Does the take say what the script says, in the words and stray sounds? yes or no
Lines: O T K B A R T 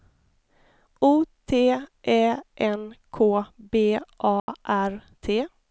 no